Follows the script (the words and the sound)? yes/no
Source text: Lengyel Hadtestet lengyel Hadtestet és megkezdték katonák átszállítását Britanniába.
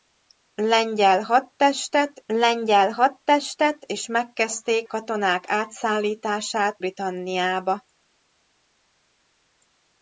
yes